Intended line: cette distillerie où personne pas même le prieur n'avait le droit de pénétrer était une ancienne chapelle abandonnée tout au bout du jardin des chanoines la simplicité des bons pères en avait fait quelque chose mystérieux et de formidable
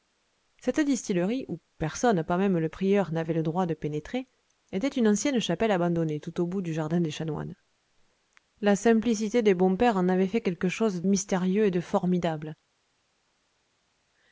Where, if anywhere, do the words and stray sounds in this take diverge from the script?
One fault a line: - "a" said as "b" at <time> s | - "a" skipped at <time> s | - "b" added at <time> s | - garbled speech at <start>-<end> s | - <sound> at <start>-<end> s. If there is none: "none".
none